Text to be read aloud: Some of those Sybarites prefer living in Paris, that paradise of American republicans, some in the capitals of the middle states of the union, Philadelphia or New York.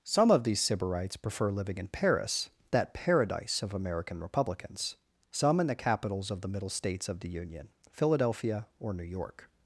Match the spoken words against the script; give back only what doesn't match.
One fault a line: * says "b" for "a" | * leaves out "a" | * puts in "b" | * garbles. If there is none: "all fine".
* says "these" for "those"